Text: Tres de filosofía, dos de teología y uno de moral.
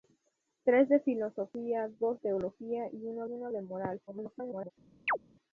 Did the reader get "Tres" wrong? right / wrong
right